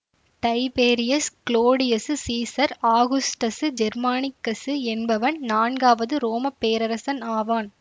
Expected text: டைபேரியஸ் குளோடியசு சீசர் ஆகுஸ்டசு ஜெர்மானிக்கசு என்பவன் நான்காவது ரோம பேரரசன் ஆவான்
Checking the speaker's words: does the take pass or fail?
pass